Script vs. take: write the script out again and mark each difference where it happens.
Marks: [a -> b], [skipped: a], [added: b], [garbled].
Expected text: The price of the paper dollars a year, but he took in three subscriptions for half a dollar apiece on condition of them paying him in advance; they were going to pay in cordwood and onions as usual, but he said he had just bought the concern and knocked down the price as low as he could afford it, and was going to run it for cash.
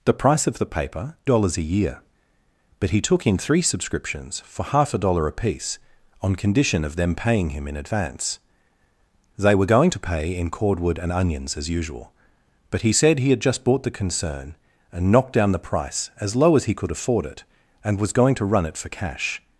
The price of the paper dollars a year, but he took in three subscriptions for half a dollar apiece on condition of them paying him in advance; they were going to pay in cordwood and onions as usual, but he said he had just bought the concern and knocked down the price as low as he could afford it, and was going to run it for cash.